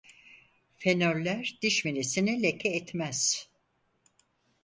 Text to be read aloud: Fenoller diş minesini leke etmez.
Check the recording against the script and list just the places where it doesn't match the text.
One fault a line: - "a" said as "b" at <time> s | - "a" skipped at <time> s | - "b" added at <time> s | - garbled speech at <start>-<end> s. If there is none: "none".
none